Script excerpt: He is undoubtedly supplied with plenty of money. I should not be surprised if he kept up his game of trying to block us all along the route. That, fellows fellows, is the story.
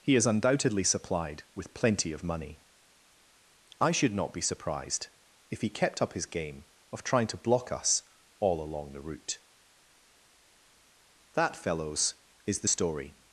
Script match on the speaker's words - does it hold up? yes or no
no